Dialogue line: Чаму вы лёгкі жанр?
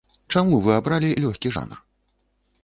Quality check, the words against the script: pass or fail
fail